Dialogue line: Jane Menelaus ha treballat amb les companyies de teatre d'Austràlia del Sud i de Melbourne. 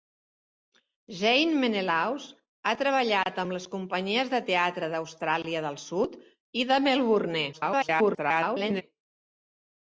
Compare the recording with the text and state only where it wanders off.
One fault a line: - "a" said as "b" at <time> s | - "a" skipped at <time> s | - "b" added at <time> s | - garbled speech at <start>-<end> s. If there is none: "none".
- garbled speech at 7.5-8.8 s